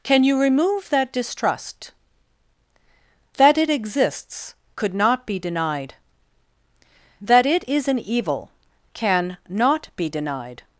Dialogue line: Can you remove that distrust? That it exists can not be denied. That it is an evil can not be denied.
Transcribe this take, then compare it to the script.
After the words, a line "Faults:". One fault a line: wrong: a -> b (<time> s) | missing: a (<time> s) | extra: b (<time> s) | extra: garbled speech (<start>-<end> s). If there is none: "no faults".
Can you remove that distrust? That it exists could not be denied. That it is an evil can not be denied.
Faults:
wrong: can -> could (4.7 s)